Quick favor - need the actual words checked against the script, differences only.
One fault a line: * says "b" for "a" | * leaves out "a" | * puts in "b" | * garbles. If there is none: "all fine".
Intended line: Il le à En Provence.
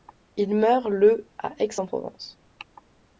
* puts in "meurt"
* puts in "Aix"